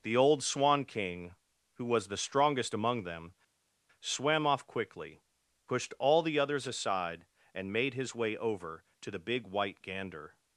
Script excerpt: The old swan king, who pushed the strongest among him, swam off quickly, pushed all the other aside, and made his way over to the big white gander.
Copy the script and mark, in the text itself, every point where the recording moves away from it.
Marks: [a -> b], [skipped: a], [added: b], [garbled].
The old swan king, who [pushed -> was] the strongest among [him, -> them] swam off quickly, pushed all the [other -> others] aside, and made his way over to the big white gander.